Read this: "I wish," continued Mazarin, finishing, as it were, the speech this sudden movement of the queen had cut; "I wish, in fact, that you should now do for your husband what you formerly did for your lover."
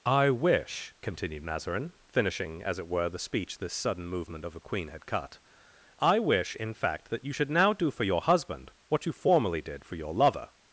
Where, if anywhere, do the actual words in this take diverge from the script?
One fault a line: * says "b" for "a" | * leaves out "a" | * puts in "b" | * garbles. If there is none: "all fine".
all fine